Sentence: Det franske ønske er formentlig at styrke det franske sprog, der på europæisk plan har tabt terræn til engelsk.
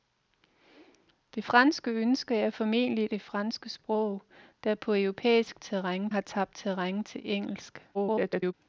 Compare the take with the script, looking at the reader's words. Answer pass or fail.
fail